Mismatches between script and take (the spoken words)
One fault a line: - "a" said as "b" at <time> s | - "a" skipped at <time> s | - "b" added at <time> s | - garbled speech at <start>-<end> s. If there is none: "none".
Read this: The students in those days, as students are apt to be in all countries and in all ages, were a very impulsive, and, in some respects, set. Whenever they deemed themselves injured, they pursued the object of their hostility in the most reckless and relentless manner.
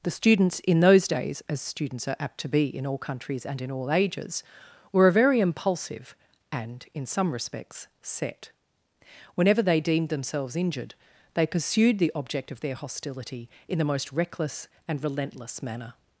none